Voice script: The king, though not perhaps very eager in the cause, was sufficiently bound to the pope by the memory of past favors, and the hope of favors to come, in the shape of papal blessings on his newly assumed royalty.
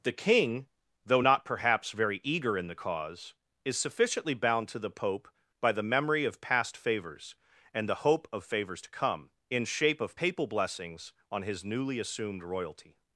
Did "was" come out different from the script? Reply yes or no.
yes